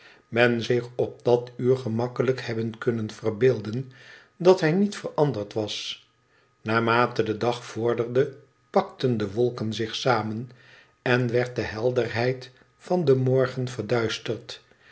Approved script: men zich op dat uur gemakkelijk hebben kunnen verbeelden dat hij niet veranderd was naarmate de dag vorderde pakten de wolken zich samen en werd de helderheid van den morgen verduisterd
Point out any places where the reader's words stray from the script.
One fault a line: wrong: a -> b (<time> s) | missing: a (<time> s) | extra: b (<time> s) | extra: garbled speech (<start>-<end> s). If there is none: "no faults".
no faults